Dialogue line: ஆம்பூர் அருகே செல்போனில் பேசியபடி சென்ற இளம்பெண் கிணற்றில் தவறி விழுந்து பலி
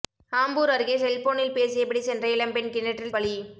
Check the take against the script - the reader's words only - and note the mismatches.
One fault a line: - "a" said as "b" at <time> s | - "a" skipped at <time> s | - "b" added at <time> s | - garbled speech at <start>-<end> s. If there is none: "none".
- "தவறி விழுந்து" skipped at 3.1 s